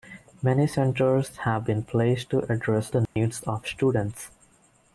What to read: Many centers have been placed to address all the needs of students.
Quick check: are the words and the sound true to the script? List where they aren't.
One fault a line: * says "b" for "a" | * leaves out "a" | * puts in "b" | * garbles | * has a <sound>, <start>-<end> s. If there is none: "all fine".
* leaves out "all"
* has a dropout, 3.1-3.2 s